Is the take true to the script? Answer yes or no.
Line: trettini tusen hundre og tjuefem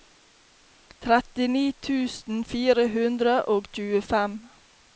no